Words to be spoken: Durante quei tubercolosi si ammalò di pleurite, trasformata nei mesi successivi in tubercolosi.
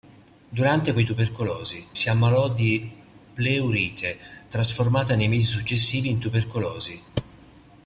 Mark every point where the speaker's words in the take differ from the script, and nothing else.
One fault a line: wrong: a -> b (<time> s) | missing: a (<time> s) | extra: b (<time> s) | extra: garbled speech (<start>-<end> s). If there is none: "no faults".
no faults